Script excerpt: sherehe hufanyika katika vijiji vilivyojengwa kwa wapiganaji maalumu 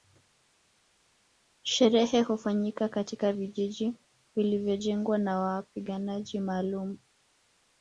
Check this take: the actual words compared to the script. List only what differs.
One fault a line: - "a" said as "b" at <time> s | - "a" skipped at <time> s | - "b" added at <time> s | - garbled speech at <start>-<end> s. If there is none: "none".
- "kwa" said as "na" at 5.2 s